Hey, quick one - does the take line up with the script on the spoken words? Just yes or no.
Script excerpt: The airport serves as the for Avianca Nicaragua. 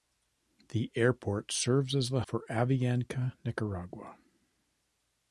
yes